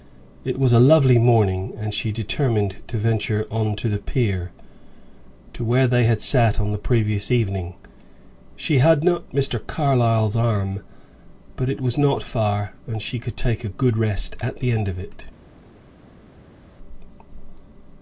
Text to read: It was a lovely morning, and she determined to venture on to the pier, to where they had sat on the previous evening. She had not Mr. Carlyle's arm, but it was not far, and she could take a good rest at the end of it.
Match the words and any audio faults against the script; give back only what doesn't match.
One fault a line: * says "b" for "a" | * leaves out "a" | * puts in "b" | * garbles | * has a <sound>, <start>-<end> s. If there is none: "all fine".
all fine